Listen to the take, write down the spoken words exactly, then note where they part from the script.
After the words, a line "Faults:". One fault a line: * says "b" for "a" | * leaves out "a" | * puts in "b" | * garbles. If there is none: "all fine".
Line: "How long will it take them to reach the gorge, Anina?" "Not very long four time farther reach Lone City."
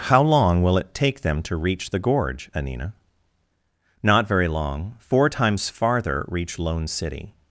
"How long will it take them to reach the gorge, Anina?" "Not very long four times farther reach Lone City."
Faults:
* says "times" for "time"